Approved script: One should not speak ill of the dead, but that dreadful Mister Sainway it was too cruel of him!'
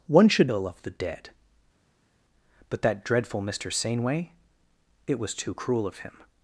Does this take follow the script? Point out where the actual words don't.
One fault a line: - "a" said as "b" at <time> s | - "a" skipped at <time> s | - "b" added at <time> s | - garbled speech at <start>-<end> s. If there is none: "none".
- "not speak" skipped at 0.5 s